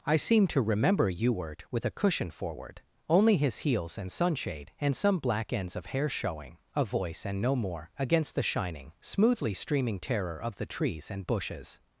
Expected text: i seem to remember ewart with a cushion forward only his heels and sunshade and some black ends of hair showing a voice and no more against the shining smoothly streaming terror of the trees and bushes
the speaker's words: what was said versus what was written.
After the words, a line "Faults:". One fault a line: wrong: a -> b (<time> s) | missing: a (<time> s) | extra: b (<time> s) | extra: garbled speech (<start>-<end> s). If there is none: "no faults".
i seem to remember ewart with a cushion forward only his heels and sunshade and some black ends of hair showing a voice and no more against the shining smoothly streaming terror of the trees and bushes
Faults:
no faults